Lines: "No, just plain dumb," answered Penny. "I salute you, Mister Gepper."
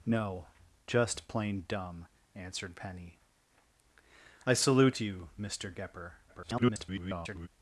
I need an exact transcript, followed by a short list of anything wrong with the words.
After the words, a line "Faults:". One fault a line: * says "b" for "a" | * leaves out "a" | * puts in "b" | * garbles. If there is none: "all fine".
"No, just plain dumb," answered Penny. "I salute you, Mister Gepper." [garbled]
Faults:
* garbles